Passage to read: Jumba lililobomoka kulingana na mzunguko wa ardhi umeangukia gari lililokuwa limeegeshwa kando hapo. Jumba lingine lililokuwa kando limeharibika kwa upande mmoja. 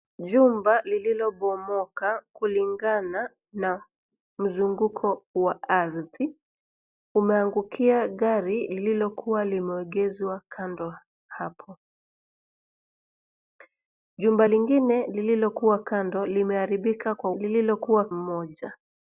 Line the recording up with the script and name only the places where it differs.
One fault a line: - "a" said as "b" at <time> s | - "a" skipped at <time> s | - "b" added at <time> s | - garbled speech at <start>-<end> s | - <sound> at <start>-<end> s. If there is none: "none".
- "upande" said as "lililokuwa" at 17.3 s